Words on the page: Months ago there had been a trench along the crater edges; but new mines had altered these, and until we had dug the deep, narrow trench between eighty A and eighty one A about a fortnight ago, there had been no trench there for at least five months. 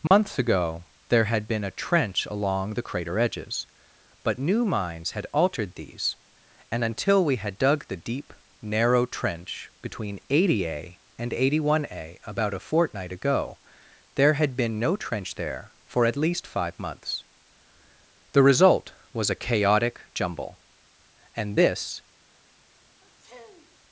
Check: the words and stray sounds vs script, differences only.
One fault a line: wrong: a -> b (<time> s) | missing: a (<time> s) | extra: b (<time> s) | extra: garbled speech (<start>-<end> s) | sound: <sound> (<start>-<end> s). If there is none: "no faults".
sound: dropout (0.1-0.1 s)
extra: The result was a chaotic jumble and this (18.3 s)
sound: sniff (23.0-23.8 s)